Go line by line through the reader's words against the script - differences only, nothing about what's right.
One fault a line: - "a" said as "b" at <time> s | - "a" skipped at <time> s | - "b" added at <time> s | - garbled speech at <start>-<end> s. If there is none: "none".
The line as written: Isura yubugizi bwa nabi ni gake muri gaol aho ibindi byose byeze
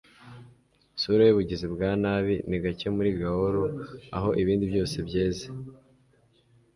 none